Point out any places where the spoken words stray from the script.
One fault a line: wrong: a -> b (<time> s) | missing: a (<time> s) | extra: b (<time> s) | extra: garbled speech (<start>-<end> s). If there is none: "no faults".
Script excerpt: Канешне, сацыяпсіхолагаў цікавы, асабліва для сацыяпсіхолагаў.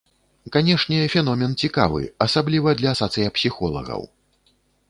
wrong: сацыяпсіхолагаў -> феномен (1.1 s)